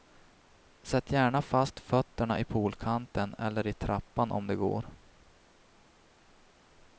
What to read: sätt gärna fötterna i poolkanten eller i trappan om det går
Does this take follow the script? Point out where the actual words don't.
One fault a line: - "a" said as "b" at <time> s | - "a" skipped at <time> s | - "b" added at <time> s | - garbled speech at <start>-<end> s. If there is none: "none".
- "fast" added at 1.4 s